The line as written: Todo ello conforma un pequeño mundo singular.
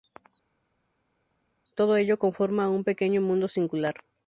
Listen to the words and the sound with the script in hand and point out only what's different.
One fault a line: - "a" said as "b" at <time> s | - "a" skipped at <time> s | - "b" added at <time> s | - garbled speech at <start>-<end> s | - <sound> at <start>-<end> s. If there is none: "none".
none